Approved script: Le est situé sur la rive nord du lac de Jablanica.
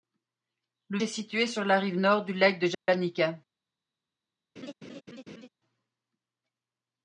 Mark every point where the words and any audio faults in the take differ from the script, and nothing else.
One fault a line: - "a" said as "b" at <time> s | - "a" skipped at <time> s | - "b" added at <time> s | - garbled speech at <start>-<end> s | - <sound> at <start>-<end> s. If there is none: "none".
- dropout at 2.7-2.9 s
- laugh at 4.6-5.5 s